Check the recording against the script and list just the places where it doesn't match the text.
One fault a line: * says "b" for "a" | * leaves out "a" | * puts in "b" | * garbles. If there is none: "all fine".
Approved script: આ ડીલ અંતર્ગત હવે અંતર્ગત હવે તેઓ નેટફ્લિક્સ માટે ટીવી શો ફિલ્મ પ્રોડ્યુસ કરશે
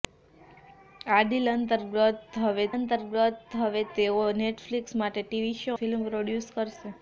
all fine